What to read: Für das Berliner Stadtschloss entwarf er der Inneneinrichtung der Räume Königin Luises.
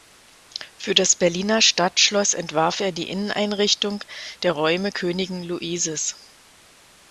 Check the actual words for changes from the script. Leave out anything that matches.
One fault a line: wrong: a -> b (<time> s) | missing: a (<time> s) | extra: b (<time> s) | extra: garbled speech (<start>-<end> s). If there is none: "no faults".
wrong: der -> die (2.9 s)